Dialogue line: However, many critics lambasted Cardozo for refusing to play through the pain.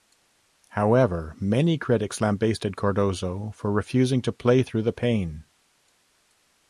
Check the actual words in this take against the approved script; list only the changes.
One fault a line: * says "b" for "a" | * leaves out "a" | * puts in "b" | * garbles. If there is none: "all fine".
all fine